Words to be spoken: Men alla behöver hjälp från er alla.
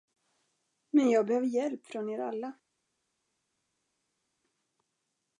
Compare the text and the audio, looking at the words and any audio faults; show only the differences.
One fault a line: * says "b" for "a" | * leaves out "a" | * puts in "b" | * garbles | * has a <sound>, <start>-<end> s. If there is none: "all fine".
* says "jag" for "alla"